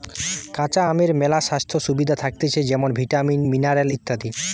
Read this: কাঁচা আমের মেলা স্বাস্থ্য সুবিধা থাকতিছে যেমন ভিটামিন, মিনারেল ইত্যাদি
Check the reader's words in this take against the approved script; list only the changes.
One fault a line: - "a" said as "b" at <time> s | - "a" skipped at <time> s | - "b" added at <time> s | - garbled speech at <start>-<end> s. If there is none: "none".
none